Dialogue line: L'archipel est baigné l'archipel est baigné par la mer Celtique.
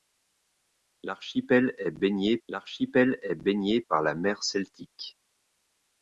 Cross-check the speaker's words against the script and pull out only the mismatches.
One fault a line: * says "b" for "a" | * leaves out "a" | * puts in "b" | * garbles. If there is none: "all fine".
all fine